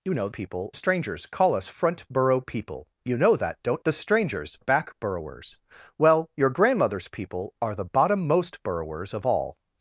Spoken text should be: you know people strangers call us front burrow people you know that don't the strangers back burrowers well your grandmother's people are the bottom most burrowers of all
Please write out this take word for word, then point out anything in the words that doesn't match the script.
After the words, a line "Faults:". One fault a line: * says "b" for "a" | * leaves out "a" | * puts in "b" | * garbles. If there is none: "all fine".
you know people strangers call us front burrow people you know that don't the strangers back burrowers well your grandmother's people are the bottom most burrowers of all
Faults:
all fine